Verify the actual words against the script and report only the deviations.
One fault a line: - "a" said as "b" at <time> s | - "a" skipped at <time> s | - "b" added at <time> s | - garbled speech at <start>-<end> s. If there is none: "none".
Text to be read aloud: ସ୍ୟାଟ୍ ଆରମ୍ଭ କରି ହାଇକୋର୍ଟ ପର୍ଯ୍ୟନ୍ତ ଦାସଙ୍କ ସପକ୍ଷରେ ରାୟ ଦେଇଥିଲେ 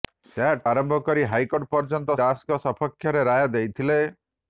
none